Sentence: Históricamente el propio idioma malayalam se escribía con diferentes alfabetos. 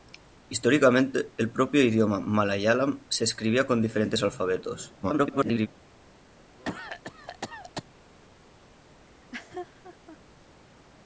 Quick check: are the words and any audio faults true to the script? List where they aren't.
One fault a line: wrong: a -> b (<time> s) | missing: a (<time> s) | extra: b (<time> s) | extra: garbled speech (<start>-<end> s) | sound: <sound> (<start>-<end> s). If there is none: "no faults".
extra: garbled speech (5.0-5.7 s)
sound: cough (6.6-7.8 s)
sound: laugh (9.1-10.2 s)